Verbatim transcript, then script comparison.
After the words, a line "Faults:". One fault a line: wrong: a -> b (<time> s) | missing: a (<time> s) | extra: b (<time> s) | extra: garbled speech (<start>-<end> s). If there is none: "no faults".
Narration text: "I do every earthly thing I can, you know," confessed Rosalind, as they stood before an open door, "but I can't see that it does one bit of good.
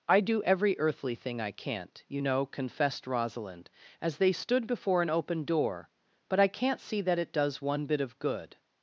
"I do every earthly thing I can't, you know," confessed Rosalind, as they stood before an open door, "but I can't see that it does one bit of good.
Faults:
wrong: can -> can't (1.5 s)